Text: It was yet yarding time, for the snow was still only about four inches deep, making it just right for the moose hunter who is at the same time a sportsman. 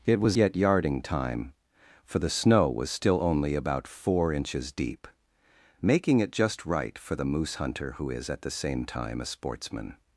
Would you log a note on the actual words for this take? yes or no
no